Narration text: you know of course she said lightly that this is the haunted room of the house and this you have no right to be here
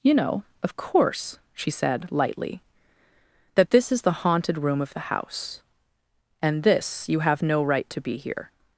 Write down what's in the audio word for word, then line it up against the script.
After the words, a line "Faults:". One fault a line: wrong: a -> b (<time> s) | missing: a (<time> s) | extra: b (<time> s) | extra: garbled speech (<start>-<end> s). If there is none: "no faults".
you know of course she said lightly that this is the haunted room of the house and this you have no right to be here
Faults:
no faults